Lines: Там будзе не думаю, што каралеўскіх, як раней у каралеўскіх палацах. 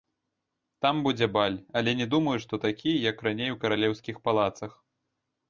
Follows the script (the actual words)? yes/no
no